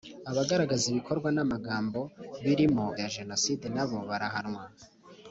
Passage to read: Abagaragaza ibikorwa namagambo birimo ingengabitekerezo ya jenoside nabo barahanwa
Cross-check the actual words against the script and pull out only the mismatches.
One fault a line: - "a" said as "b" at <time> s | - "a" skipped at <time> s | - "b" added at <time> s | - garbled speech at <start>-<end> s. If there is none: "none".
- "ingengabitekerezo" skipped at 2.9 s